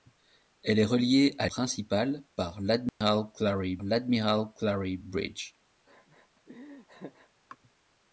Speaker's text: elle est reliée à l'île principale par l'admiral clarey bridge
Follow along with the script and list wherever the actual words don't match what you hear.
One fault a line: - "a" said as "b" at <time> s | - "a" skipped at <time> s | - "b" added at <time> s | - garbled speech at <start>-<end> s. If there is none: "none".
- "l'île" skipped at 1.5 s
- "l'admiral clarey" added at 3.8 s